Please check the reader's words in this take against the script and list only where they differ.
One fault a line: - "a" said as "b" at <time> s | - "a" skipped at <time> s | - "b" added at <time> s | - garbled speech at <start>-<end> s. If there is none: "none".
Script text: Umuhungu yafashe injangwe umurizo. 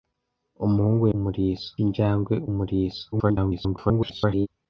- "yafashe" said as "umurizo" at 1.1 s
- garbled speech at 3.1-4.5 s